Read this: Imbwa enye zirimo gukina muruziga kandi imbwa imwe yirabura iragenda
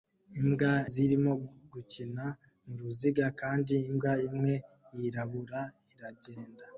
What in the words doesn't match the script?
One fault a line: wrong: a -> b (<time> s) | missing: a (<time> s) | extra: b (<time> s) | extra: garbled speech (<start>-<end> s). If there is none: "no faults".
missing: enye (0.7 s)